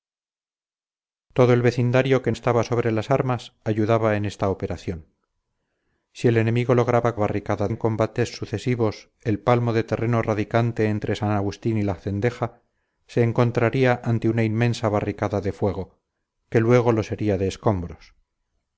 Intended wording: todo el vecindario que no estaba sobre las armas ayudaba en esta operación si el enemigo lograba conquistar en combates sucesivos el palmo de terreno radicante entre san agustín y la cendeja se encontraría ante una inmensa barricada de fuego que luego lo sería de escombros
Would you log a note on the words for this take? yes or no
yes